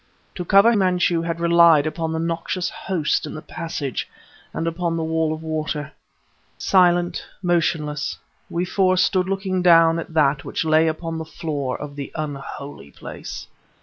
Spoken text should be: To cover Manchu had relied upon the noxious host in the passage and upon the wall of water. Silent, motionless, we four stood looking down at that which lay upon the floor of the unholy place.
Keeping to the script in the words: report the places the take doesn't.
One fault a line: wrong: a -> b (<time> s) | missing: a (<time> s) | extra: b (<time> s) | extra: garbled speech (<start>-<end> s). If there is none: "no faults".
no faults